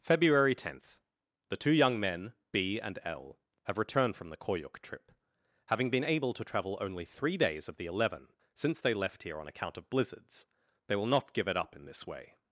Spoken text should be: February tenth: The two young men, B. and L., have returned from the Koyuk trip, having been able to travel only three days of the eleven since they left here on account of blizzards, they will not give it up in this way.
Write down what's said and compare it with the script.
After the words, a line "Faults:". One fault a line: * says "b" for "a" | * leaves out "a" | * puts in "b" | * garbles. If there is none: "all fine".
February tenth: The two young men, B. and L., have returned from the Koyuk trip, having been able to travel only three days of the eleven since they left here on account of blizzards, they will not give it up in this way.
Faults:
all fine